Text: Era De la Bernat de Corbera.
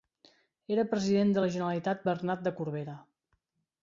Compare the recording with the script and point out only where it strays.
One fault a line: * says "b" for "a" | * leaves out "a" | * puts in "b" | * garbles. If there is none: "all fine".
* puts in "President"
* puts in "Generalitat"